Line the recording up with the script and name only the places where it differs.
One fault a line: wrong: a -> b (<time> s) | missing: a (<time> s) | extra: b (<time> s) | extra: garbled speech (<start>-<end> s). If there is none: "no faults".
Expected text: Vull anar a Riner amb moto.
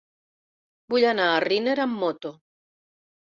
no faults